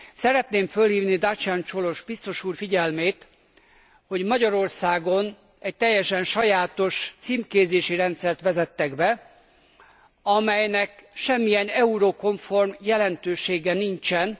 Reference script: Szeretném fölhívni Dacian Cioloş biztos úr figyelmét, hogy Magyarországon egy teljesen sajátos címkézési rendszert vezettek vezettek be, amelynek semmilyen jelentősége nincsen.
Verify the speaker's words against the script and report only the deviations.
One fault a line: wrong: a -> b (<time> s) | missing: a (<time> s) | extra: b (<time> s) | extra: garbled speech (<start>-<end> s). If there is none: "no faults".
missing: vezettek (9.0 s)
extra: eurokomform (11.7 s)